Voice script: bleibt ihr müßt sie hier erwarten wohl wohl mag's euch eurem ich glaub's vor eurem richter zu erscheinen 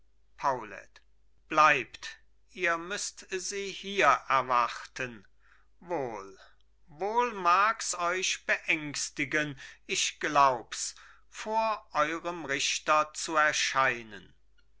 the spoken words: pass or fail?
fail